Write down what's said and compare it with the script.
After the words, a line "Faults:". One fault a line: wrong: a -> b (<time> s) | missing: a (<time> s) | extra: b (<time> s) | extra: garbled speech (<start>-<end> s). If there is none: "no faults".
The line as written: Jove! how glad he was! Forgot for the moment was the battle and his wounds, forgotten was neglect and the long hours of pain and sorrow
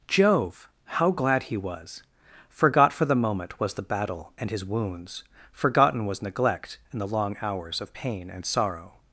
Jove! how glad he was! Forgot for the moment was the battle and his wounds, forgotten was neglect and the long hours of pain and sorrow
Faults:
no faults